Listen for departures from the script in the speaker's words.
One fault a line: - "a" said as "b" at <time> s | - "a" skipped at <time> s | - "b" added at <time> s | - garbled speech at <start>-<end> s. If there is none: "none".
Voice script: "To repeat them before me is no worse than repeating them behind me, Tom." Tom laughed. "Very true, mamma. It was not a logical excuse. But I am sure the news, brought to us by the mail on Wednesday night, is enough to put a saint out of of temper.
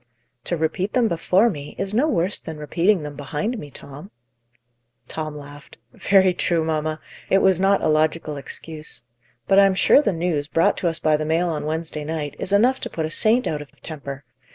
none